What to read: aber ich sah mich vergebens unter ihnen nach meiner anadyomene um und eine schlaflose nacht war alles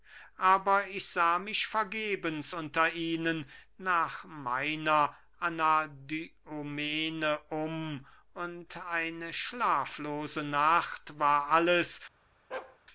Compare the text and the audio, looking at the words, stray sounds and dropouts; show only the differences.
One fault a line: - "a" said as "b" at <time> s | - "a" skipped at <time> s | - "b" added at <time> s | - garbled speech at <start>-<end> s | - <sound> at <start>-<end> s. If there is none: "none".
- bark at 12.5-12.8 s